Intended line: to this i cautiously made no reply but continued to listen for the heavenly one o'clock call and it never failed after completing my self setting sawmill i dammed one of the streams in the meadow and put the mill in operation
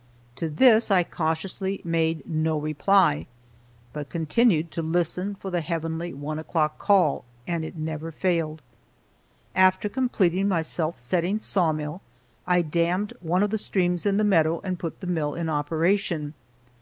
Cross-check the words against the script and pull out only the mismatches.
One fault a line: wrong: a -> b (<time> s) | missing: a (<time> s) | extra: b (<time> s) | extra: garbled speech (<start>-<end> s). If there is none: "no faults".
no faults